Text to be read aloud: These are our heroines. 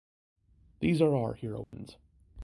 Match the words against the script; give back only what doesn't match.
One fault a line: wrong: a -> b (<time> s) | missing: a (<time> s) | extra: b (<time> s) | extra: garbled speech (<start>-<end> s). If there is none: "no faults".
no faults